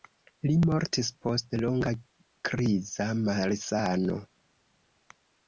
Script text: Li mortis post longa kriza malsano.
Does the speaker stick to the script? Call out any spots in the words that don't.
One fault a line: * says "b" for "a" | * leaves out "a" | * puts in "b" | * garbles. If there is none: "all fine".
all fine